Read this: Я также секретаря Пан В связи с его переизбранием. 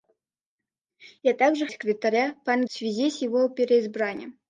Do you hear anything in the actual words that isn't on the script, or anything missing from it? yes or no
no